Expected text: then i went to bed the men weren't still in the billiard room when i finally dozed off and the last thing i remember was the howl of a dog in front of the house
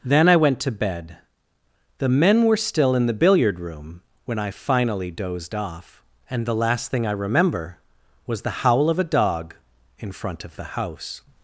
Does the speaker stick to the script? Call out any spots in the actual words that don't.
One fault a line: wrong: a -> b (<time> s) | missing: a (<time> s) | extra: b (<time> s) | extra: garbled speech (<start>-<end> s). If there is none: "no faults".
wrong: weren't -> were (2.5 s)